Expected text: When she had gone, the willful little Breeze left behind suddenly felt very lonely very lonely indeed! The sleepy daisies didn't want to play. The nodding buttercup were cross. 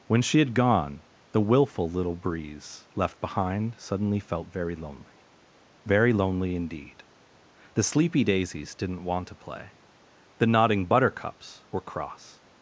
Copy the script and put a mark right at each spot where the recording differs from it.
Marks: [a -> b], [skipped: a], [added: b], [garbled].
When she had gone, the willful little Breeze left behind suddenly felt very lonely very lonely indeed! The sleepy daisies didn't want to play. The nodding [buttercup -> buttercups] were cross.